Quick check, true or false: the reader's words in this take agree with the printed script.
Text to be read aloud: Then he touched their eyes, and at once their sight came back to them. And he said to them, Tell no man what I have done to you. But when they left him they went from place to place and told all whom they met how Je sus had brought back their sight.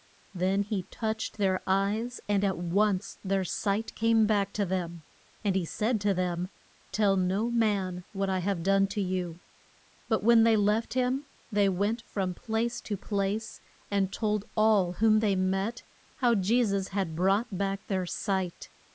true